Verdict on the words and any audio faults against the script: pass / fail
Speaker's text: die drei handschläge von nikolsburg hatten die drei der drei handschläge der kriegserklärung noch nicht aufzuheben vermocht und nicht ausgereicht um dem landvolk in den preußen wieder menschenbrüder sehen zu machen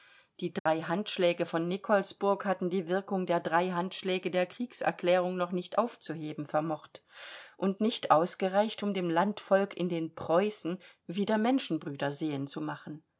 fail